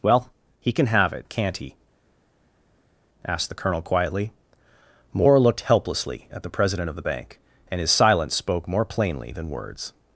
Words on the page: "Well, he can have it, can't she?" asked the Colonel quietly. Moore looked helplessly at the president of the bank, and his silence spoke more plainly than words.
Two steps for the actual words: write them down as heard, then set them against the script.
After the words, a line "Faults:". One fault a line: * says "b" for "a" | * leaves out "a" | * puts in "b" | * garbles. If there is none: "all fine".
"Well, he can have it, can't he?" asked the Colonel quietly. Moore looked helplessly at the president of the bank, and his silence spoke more plainly than words.
Faults:
* says "he" for "she"